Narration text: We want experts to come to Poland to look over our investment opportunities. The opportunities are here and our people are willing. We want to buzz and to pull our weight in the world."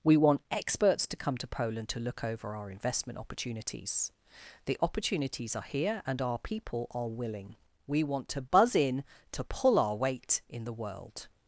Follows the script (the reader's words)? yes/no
no